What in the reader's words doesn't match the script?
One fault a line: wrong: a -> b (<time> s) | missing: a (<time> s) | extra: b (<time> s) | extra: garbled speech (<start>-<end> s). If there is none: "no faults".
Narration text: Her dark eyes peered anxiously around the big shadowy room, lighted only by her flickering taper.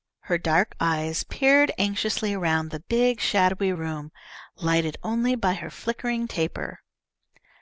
no faults